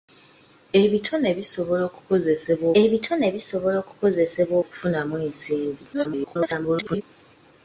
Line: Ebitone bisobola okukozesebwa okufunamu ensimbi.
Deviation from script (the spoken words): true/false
true